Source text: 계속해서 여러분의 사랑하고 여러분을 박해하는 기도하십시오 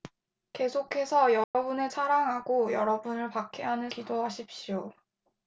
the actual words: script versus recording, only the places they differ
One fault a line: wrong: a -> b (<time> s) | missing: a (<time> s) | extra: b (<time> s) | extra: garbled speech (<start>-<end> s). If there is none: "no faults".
no faults